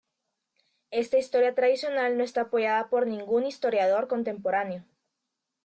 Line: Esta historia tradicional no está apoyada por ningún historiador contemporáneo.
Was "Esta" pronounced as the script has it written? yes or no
yes